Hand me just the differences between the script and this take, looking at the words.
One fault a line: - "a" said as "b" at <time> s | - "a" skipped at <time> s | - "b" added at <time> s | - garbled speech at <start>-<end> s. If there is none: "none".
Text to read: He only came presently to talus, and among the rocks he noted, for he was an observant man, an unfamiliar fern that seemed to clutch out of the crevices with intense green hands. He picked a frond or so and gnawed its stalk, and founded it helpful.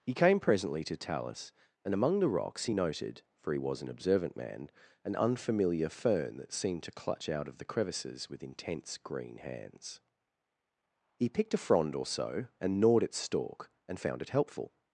- "only" skipped at 0.1 s
- "founded" said as "found" at 14.0 s